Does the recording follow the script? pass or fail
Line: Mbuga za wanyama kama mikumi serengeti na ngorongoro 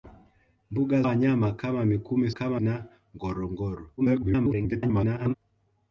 fail